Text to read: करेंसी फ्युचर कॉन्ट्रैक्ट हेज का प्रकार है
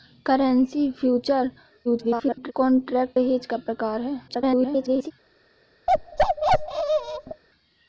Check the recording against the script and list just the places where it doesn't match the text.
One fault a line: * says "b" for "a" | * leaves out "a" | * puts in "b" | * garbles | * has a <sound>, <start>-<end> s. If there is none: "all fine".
* garbles
* garbles
* has a bark, 5.9-7.4 s